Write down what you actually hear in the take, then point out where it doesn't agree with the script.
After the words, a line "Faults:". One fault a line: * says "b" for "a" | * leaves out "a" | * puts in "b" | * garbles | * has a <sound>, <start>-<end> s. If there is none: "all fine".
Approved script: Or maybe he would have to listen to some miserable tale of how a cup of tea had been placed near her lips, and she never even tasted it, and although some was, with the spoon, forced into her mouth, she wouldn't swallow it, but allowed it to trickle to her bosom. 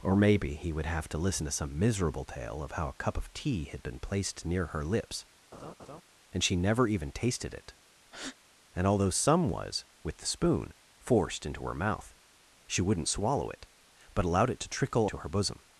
Or maybe he would have to listen to some miserable tale of how a cup of tea had been placed near her lips, and she never even tasted it, and although some was, with the spoon, forced into her mouth, she wouldn't swallow it, but allowed it to trickle to her bosom.
Faults:
* has a laugh, 5.5-6.0 s
* has a breath, 8.1-8.4 s